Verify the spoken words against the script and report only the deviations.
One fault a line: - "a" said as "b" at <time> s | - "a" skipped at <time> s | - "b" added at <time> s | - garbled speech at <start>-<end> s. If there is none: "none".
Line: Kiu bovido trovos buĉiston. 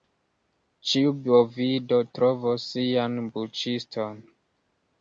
- "Kiu" said as "Ĉiu" at 0.9 s
- "sian" added at 2.7 s